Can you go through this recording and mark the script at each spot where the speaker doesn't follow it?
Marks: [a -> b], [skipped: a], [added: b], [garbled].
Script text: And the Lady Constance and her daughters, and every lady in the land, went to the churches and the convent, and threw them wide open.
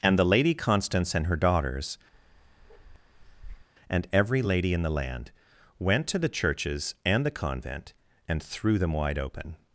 And the Lady Constance and her daughters, and every lady in the land, went to the churches and the convent, and threw them wide open.